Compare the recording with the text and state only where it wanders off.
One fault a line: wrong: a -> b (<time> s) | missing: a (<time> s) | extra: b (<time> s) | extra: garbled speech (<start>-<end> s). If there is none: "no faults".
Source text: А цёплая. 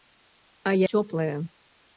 no faults